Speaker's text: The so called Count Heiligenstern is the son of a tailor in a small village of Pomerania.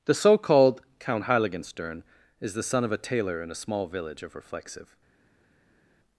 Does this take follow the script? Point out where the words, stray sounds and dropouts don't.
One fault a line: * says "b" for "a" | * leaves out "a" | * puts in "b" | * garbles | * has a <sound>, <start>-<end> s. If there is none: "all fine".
* says "Reflexive" for "Pomerania"